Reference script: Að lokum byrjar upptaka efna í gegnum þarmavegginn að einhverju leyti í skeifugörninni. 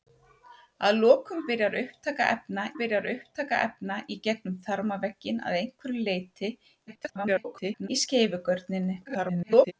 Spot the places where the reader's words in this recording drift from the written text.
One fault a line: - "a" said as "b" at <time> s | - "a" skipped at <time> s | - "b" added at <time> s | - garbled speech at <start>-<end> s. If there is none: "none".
- "byrjar upptaka efna" added at 2.8 s
- garbled speech at 6.9-7.9 s
- garbled speech at 9.0-9.7 s